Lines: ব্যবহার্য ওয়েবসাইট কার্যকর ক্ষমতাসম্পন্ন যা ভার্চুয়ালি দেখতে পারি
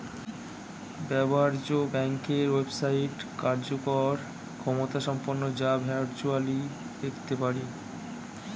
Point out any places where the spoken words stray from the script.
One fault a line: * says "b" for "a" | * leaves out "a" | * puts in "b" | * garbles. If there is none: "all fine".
* puts in "ব্যাংকের"